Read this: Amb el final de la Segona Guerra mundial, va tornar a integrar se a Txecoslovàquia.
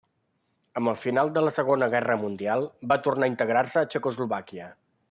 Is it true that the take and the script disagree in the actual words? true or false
false